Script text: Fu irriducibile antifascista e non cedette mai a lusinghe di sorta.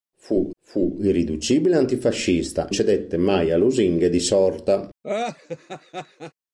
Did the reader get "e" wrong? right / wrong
wrong